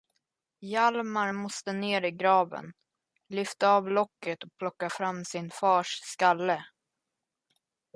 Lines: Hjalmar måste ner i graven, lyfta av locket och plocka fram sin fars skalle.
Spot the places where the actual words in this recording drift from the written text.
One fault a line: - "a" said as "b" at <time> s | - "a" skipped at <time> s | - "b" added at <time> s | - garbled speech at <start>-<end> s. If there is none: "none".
none